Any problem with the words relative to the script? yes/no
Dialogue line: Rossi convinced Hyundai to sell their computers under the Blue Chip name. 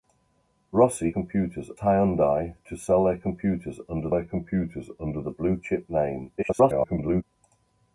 yes